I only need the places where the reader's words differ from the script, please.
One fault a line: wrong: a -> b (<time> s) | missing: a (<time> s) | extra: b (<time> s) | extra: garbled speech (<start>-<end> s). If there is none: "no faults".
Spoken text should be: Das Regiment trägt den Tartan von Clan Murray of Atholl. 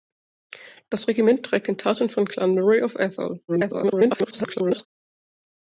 extra: garbled speech (3.5-4.9 s)